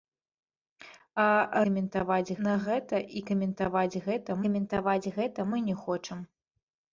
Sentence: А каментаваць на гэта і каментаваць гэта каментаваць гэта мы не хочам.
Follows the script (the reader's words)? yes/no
yes